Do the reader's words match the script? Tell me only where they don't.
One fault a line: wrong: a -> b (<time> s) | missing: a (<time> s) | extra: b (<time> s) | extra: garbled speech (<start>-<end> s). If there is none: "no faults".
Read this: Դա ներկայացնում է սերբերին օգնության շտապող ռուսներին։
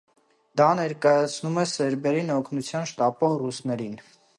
no faults